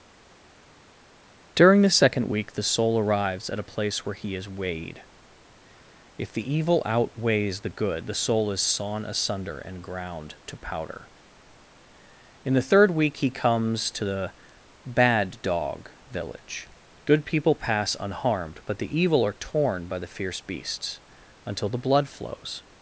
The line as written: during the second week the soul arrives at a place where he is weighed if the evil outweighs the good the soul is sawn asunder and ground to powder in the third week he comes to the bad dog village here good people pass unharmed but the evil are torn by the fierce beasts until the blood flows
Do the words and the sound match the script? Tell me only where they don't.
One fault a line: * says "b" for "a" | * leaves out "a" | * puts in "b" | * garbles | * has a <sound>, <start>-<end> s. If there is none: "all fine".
* leaves out "here"